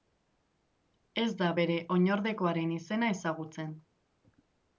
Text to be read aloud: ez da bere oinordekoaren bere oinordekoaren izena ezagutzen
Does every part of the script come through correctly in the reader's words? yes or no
no